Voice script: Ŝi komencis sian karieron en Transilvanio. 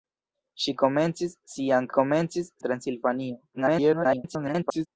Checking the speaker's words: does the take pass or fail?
fail